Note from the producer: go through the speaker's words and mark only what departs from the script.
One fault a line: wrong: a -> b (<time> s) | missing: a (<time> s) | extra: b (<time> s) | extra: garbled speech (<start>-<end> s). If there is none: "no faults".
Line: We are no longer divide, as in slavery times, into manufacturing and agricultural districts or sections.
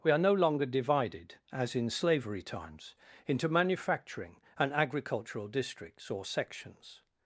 wrong: divide -> divided (0.7 s)